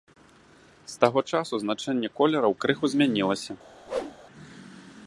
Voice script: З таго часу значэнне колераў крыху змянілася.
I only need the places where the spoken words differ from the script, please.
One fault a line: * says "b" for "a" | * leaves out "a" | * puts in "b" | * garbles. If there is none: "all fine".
all fine